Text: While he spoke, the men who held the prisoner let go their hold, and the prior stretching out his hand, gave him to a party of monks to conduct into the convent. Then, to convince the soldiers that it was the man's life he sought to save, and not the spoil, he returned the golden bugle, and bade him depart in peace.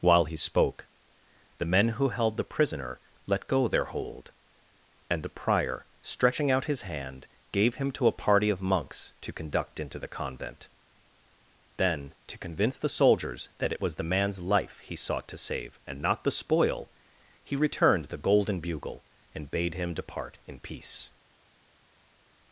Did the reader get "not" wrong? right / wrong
right